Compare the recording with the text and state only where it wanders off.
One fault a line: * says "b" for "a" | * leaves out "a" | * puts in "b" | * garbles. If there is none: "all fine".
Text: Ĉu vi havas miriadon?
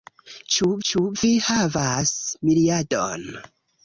* puts in "ĉu"